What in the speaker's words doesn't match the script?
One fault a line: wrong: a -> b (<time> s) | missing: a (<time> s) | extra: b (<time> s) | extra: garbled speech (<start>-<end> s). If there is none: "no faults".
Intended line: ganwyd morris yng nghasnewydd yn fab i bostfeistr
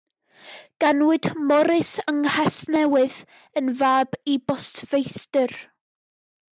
no faults